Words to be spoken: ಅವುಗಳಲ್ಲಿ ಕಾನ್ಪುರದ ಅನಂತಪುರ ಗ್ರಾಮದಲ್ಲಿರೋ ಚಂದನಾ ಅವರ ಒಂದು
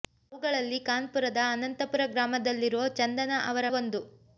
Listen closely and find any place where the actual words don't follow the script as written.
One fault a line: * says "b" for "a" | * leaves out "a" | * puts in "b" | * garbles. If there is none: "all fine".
all fine